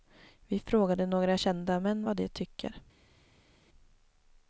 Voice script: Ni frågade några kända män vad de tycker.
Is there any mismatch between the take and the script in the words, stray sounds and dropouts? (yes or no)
yes